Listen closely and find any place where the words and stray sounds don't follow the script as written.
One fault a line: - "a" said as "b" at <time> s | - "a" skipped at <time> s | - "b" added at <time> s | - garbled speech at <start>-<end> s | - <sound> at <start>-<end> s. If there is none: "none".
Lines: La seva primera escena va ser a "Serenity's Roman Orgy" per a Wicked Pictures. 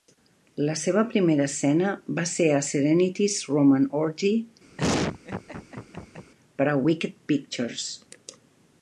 - laugh at 4.8-6.3 s